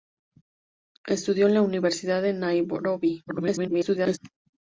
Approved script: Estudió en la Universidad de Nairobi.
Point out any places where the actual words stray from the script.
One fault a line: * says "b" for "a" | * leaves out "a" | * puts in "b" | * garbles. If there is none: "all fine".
* garbles